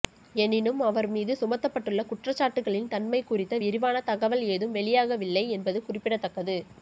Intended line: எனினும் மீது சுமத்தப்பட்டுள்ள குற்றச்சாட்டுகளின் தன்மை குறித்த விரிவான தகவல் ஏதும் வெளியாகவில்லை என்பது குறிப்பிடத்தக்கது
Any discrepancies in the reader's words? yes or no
yes